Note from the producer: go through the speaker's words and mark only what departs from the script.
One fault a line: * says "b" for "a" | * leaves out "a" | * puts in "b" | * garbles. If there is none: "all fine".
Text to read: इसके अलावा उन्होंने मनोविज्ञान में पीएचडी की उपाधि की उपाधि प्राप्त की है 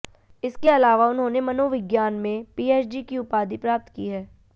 * leaves out "की उपाधि"